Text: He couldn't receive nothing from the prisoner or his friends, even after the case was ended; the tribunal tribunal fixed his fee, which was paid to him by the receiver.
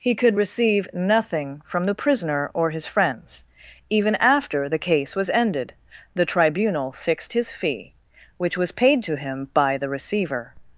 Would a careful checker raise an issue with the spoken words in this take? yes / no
yes